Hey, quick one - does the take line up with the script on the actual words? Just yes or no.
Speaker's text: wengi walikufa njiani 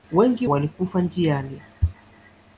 yes